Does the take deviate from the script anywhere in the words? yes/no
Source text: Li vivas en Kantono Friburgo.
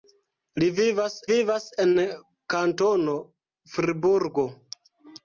yes